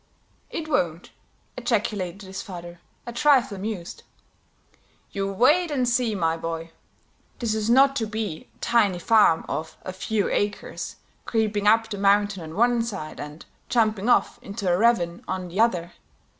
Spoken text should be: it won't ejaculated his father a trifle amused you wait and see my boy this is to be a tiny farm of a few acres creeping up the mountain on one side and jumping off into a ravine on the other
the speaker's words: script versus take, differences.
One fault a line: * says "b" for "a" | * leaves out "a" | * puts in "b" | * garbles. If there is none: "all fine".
* puts in "not"